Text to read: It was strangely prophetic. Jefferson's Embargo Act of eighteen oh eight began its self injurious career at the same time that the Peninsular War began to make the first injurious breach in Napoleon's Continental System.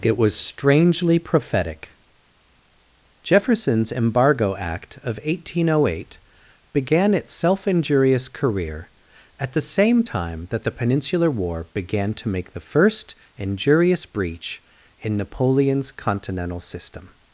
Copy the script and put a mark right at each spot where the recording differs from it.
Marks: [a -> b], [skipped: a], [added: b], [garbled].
It was strangely prophetic. Jefferson's Embargo Act of eighteen oh eight began its self injurious career at the same time that the Peninsular War began to make the first injurious breach in Napoleon's Continental System.